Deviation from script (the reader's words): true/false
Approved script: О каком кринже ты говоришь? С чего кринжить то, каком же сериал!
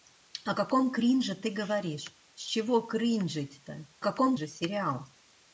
false